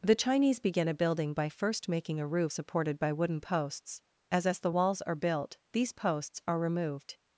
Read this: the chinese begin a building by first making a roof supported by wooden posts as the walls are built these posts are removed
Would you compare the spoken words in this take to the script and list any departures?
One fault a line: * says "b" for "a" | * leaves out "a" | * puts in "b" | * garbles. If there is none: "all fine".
* puts in "as"